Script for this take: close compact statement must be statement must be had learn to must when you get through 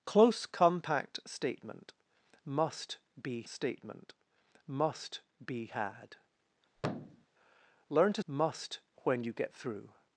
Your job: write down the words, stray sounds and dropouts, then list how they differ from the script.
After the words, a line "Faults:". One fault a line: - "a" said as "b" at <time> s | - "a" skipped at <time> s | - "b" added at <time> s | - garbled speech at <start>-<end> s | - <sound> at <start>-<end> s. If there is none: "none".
close compact statement must be statement must be had learn to must when you get through
Faults:
- thud at 6.7-7.3 s